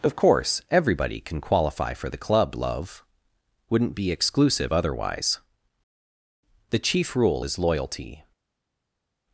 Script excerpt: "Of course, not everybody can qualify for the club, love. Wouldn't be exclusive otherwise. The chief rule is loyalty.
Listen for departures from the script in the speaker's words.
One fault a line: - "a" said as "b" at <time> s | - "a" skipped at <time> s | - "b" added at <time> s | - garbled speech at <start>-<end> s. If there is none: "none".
- "not" skipped at 0.6 s